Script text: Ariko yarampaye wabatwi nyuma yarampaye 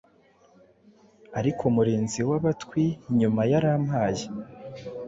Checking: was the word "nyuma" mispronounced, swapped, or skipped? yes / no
no